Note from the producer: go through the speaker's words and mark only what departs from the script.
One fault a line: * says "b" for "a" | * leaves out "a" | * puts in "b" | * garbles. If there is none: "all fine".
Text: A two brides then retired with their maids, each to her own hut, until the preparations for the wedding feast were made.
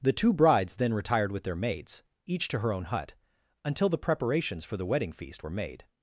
* says "The" for "A"